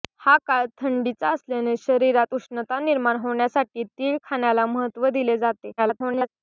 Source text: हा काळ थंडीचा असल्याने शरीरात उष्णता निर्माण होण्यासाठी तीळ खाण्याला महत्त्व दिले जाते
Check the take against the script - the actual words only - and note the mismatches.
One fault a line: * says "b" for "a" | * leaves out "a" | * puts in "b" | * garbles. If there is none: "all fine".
* garbles